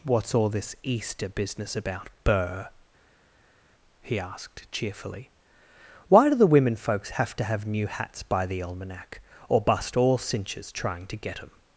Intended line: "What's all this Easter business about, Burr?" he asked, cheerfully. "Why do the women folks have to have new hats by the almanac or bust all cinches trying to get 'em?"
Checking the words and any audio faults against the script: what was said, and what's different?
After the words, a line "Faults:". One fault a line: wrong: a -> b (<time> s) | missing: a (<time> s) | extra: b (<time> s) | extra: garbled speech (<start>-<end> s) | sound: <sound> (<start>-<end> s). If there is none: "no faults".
"What's all this Easter business about, Burr?" he asked, cheerfully. "Why do the women folks have to have new hats by the almanac or bust all cinches trying to get 'em?"
Faults:
no faults